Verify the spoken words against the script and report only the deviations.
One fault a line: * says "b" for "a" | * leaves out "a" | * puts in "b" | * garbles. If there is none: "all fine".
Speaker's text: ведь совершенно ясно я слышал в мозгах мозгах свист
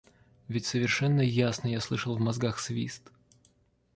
* leaves out "мозгах"